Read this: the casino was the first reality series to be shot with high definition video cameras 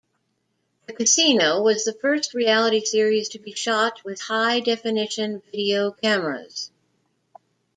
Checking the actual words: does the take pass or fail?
pass